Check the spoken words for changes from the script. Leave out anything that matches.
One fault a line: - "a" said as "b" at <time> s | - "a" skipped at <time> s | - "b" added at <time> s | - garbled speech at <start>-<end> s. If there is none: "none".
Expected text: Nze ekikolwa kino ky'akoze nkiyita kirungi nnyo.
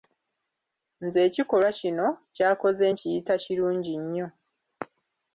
none